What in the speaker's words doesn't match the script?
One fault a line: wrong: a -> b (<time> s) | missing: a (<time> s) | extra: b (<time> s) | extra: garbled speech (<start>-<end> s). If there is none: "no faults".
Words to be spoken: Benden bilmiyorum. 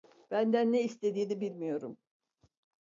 extra: ne istediğini (0.7 s)